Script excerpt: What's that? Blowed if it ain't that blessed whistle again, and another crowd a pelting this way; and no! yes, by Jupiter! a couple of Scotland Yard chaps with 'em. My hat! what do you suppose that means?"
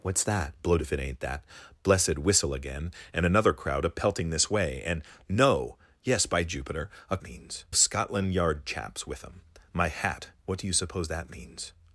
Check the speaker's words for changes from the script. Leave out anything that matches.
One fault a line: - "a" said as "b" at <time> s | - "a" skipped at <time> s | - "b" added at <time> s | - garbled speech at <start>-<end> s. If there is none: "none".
- "couple" said as "means" at 7.2 s